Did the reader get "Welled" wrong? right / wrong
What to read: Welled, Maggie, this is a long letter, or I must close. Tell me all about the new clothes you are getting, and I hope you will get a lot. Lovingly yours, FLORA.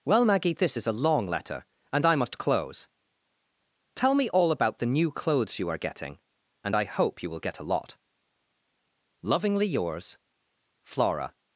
wrong